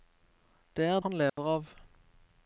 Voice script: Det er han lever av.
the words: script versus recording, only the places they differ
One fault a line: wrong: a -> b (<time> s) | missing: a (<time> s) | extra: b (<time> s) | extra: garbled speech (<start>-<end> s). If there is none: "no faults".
no faults